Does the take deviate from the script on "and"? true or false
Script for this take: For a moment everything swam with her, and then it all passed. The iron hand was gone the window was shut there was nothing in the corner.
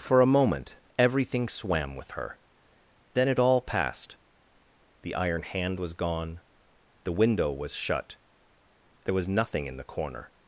true